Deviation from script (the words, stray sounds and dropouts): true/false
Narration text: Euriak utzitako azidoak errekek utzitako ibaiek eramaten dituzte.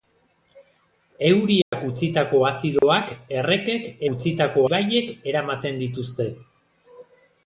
true